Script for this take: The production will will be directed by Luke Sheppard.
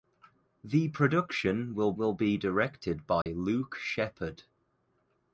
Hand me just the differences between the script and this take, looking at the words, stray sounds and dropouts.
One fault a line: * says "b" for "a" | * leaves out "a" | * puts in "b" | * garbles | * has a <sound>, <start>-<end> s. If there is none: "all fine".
* has a dropout, 3.2-3.3 s